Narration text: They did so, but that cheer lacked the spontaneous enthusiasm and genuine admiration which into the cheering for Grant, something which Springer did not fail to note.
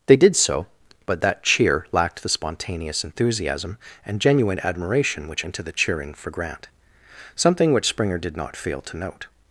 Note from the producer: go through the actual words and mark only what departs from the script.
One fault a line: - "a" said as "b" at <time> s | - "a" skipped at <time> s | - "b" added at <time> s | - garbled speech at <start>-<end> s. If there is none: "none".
none